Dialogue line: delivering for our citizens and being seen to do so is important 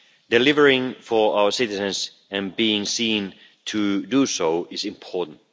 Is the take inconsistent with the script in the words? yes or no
no